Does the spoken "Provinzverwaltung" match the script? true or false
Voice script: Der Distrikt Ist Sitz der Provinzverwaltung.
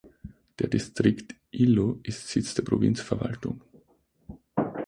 true